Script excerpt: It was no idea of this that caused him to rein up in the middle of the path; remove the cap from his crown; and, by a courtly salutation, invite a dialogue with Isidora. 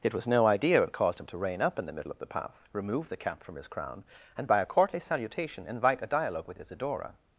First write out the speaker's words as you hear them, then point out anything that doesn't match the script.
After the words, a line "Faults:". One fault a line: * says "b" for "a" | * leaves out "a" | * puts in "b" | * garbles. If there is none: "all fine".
It was no idea of caused him to rein up in the middle of the path; remove the cap from his crown; and, by a courtly salutation, invite a dialogue with Isidora.
Faults:
* leaves out "this that"